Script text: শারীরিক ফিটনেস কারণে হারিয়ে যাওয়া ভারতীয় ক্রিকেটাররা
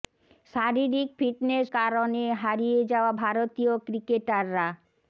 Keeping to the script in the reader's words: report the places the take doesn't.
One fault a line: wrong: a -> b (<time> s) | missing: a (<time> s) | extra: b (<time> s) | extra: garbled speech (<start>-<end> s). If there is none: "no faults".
no faults